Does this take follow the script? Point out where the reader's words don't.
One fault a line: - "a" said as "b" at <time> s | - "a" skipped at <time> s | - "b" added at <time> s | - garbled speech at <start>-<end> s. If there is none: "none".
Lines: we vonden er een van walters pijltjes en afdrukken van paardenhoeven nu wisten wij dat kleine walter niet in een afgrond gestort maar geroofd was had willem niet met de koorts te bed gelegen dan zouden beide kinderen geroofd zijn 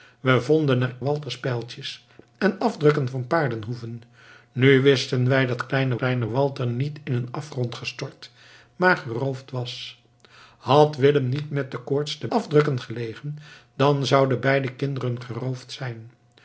- "een van" skipped at 0.9 s
- "kleine" added at 6.0 s
- "bed" said as "afdrukken" at 12.3 s